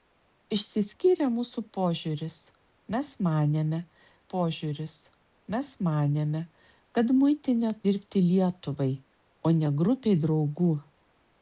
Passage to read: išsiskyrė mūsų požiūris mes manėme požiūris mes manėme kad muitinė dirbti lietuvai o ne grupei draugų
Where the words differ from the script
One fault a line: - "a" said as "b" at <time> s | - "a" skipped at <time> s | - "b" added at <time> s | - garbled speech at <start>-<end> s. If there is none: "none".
none